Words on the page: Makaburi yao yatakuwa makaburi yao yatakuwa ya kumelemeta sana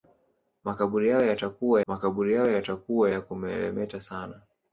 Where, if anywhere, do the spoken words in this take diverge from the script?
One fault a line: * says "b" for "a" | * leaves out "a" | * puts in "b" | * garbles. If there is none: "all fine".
all fine